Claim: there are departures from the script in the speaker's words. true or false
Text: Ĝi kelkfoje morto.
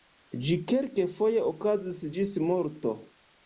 true